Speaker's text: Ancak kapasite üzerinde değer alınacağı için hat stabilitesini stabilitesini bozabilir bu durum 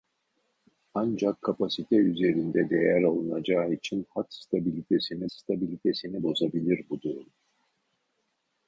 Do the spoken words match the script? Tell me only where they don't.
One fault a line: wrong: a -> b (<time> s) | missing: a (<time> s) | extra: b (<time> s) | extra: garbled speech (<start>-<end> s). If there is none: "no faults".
no faults